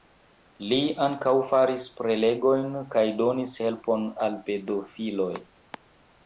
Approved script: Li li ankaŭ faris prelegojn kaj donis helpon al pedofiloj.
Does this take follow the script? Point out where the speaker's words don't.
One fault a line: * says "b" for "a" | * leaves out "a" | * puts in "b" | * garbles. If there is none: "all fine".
* leaves out "li"